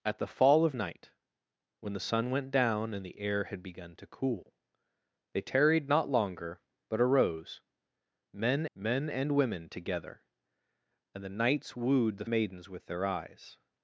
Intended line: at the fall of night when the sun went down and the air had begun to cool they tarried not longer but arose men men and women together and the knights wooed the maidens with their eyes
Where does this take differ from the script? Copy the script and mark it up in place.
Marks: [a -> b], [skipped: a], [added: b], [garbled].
at the fall of night when the sun went down and the air had begun to cool they tarried not longer but arose men men and women together and the knights wooed the maidens with their eyes